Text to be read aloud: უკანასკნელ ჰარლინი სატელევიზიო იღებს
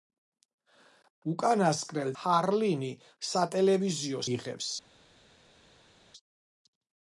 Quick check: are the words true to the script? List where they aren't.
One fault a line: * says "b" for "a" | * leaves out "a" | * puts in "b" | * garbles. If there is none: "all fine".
all fine